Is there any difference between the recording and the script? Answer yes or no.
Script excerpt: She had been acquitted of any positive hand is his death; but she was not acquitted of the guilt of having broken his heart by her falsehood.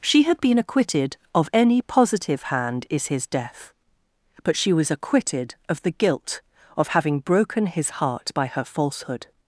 yes